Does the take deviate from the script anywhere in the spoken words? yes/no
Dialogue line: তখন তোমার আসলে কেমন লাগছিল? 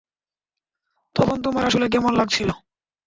no